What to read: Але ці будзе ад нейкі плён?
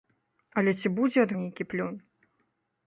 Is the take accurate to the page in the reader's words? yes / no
yes